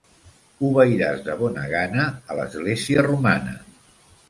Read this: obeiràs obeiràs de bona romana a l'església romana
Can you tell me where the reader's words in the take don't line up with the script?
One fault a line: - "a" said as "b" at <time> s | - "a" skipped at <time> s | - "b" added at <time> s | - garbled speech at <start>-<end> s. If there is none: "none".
- "obeiràs" skipped at 1.2 s
- "romana" said as "gana" at 1.8 s